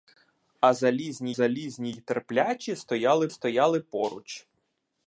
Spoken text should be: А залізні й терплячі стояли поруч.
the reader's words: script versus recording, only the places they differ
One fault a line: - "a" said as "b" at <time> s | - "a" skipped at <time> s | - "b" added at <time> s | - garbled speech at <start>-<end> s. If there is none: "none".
- "залізні" added at 1.3 s
- "стояли" added at 3.3 s